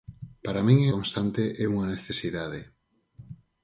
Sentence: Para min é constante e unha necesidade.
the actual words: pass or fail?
pass